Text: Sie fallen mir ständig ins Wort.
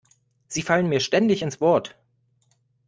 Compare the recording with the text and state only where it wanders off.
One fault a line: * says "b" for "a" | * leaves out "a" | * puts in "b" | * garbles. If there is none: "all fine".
all fine